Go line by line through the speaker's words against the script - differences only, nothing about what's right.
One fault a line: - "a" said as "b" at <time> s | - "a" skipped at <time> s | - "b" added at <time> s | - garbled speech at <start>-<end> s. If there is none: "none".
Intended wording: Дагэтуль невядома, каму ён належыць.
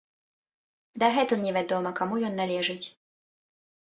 none